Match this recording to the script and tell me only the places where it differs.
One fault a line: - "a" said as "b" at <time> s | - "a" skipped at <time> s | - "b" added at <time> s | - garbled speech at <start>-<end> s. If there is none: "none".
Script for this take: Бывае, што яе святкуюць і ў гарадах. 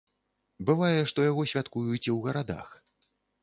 - "яе" said as "яго" at 1.3 s